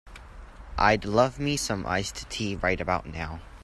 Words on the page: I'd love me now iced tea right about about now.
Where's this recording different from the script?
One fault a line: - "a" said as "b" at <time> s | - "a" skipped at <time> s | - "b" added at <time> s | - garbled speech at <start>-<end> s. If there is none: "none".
- "now" said as "some" at 1.5 s
- "about" skipped at 3.0 s